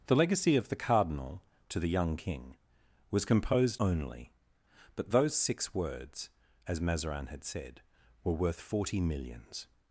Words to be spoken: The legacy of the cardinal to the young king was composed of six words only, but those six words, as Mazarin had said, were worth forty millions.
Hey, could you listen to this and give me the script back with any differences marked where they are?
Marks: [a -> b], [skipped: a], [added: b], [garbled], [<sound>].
The legacy of the cardinal to the young king was composed [skipped: of six words] only, but those six words, as Mazarin had said, were worth forty millions.